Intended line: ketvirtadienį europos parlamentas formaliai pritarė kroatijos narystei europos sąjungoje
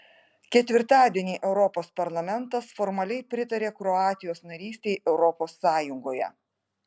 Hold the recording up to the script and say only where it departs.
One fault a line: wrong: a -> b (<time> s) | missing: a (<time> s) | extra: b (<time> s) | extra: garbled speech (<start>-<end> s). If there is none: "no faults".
no faults